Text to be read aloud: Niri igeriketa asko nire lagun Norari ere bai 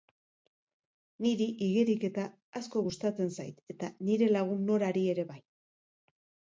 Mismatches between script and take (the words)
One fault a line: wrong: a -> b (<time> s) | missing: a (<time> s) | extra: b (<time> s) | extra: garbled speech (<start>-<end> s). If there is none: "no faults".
extra: gustatzen zait eta (2.9 s)